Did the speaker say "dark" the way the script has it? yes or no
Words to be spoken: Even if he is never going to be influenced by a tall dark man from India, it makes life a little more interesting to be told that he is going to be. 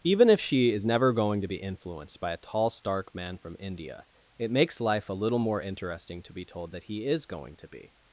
no